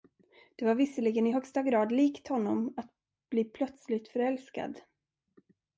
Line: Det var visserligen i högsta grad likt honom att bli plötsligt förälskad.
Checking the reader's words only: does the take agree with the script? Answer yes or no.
yes